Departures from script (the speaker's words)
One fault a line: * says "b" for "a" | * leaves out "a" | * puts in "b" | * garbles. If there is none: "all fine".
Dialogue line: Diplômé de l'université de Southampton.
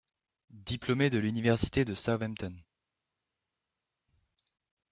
all fine